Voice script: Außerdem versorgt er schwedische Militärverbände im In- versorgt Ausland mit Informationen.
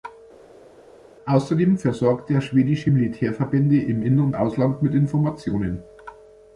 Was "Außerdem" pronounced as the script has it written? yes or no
yes